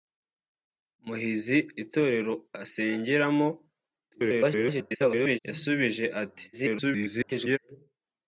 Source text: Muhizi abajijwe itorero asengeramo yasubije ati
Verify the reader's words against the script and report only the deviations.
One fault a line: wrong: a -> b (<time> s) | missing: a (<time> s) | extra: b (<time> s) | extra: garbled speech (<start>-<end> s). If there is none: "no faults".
missing: abajijwe (1.6 s)
extra: garbled speech (4.1-5.4 s)
extra: garbled speech (6.5-7.6 s)